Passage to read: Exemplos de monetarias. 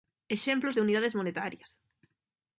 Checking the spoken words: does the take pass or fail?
fail